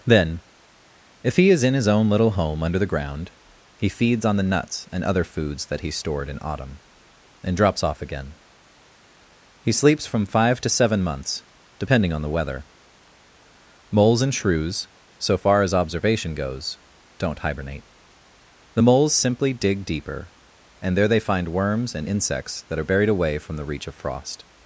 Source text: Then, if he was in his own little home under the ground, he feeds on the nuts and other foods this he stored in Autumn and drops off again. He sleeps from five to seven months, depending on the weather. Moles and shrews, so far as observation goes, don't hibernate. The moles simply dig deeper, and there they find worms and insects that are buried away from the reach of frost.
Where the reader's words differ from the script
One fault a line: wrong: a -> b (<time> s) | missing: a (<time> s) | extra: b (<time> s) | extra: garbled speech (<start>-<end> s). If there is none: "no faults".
wrong: was -> is (1.5 s)
wrong: this -> that (5.7 s)